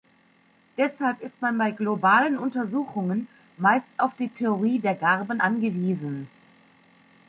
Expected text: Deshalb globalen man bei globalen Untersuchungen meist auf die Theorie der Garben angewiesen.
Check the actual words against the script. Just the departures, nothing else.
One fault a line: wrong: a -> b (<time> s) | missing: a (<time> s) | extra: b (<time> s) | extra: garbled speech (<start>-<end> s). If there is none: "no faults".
wrong: globalen -> ist (1.2 s)